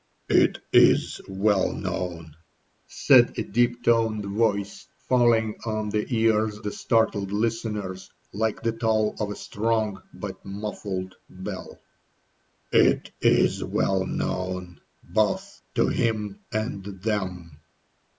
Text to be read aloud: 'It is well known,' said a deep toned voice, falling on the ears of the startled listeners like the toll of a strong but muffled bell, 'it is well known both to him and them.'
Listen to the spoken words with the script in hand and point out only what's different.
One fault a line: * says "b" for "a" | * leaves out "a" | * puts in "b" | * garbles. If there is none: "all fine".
* leaves out "of"